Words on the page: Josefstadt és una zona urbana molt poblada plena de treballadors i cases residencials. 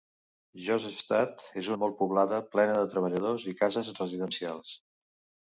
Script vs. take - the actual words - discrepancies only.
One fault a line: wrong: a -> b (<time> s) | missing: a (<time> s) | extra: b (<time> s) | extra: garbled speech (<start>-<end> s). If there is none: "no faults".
missing: una zona urbana (1.7 s)